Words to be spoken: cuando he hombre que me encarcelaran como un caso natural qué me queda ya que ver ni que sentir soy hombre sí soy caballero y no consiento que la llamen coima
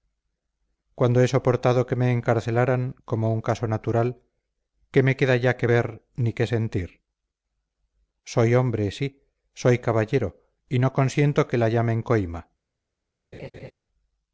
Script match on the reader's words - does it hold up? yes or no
no